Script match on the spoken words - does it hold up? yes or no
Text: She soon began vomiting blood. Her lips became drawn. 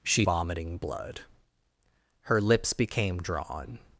no